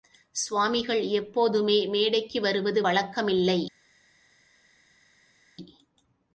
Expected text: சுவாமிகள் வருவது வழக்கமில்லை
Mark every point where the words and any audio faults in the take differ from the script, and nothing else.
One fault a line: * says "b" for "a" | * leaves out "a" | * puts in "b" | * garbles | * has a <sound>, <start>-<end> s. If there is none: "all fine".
* puts in "எப்போதுமே மேடைக்கு"